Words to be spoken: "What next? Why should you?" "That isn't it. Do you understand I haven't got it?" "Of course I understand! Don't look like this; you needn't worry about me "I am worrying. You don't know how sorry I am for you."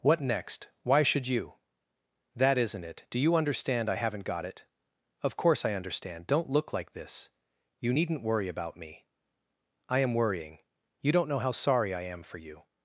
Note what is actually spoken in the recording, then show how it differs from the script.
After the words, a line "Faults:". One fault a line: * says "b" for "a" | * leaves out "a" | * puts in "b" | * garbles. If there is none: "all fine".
"What next? Why should you?" "That isn't it. Do you understand I haven't got it?" "Of course I understand! Don't look like this; you needn't worry about me "I am worrying. You don't know how sorry I am for you."
Faults:
all fine